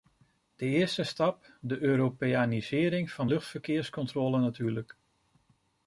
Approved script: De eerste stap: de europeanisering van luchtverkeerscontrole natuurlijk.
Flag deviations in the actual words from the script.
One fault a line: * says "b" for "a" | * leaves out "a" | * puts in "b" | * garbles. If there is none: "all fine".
all fine